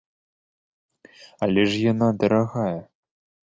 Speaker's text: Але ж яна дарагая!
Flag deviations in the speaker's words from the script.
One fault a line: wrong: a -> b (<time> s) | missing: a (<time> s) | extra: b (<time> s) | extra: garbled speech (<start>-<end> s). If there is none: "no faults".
no faults